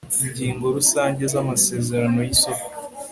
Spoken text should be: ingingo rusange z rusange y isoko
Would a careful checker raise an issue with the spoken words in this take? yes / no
yes